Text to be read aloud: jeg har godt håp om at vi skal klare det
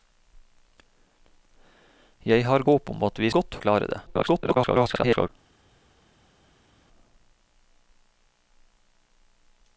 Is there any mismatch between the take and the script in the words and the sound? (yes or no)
yes